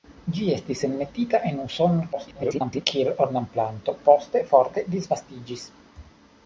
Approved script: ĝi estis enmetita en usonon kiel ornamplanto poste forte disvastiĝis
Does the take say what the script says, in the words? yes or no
no